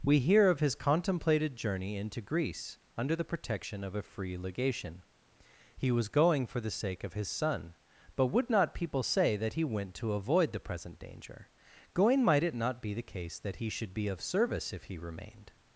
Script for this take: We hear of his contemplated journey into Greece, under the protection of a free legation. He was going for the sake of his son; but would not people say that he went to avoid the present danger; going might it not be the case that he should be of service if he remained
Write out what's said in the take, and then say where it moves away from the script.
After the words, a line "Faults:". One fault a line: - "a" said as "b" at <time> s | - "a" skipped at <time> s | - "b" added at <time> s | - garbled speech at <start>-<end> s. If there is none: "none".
We hear of his contemplated journey into Greece, under the protection of a free legation. He was going for the sake of his son; but would not people say that he went to avoid the present danger; going might it not be the case that he should be of service if he remained
Faults:
none